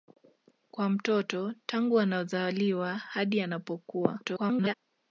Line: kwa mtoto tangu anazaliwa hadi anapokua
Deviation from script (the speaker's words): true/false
true